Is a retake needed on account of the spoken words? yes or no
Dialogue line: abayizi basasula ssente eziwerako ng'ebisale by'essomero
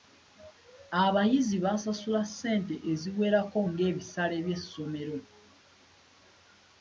no